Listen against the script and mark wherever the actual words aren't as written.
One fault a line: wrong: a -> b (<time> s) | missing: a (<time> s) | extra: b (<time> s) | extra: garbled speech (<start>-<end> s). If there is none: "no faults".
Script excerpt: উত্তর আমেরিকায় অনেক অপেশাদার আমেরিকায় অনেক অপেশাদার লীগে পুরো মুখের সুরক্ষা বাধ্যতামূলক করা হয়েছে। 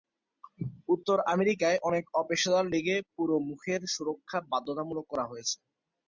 missing: আমেরিকায় অনেক অপেশাদার (2.7 s)